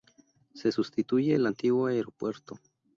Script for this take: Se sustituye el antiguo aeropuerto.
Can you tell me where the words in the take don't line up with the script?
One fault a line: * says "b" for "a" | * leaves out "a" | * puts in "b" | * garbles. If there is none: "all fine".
all fine